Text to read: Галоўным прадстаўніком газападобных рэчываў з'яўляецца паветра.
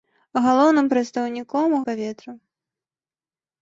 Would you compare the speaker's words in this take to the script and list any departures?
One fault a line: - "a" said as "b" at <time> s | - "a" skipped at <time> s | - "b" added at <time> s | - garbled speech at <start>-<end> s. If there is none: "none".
- "газападобных рэчываў з'яўляецца" skipped at 1.8 s